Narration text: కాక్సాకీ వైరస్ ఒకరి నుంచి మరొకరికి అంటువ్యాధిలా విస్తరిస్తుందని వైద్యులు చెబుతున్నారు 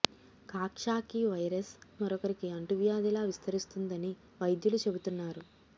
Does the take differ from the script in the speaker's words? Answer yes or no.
yes